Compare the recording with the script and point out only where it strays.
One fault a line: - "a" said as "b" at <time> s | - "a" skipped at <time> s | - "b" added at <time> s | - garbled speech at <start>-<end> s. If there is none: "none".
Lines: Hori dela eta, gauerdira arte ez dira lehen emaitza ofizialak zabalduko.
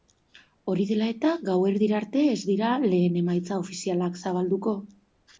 none